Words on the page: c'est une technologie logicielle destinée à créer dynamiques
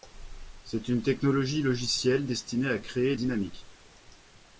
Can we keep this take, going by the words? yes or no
yes